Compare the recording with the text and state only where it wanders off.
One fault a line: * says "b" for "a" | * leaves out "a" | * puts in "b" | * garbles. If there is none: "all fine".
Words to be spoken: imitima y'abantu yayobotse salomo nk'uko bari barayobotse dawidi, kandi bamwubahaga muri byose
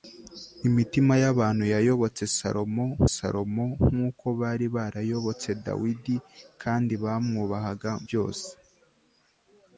* puts in "salomo"
* leaves out "muri"